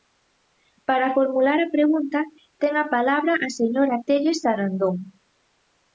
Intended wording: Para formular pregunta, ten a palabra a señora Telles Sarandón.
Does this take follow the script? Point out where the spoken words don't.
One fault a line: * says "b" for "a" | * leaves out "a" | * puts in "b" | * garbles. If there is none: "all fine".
* puts in "a"